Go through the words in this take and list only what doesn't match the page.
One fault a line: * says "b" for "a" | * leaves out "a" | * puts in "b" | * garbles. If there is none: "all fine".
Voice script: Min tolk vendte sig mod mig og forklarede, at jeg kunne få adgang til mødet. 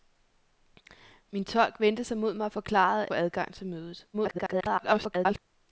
* leaves out "jeg kunne"
* garbles